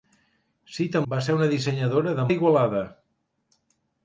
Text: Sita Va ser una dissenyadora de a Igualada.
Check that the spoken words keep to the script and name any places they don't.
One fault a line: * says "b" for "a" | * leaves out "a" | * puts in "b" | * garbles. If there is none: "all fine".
all fine